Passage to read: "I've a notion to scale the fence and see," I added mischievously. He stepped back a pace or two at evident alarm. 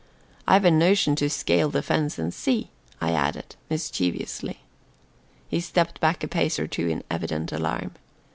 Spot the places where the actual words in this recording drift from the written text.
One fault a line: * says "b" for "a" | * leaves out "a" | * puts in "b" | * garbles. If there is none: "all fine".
* says "in" for "at"